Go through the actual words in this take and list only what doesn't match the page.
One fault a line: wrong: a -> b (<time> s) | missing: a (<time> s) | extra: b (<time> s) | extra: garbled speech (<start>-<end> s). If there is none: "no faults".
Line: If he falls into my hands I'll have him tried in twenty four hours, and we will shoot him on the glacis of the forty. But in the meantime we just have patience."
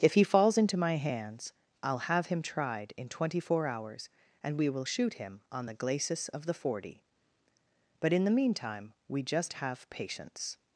no faults